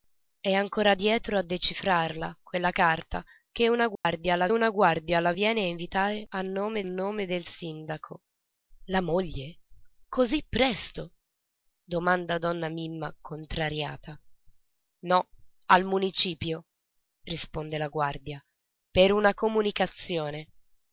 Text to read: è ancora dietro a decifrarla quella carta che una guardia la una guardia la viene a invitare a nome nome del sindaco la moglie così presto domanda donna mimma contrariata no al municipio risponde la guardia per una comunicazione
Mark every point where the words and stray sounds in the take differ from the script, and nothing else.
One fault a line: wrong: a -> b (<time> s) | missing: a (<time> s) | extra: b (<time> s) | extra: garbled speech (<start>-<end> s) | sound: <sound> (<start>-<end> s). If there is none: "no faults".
sound: dropout (4.0-4.1 s)